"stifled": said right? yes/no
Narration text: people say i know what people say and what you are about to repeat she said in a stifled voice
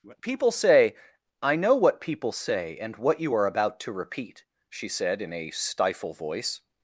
no